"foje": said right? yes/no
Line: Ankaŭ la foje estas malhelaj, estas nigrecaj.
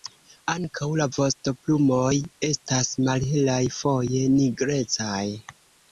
no